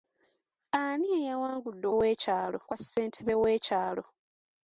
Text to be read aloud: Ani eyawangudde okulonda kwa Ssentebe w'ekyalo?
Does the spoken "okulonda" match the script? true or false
false